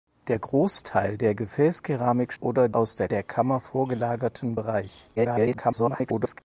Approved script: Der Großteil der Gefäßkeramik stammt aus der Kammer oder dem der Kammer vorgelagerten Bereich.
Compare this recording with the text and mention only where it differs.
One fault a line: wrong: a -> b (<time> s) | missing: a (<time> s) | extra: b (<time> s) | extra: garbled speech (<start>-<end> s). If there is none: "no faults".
wrong: stammt -> oder (2.4 s)
missing: Kammer oder dem (3.1 s)
extra: garbled speech (5.2-6.4 s)